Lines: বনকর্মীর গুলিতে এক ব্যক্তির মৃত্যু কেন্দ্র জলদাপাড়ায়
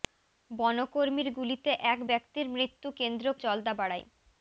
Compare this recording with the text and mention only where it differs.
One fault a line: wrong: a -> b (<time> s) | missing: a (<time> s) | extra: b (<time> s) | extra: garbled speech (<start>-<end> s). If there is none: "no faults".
no faults